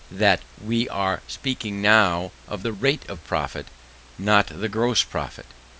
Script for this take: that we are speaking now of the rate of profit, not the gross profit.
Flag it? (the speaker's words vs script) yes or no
no